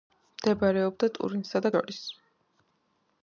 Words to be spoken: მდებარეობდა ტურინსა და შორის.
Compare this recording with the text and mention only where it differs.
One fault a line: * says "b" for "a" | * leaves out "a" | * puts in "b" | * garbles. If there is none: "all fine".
all fine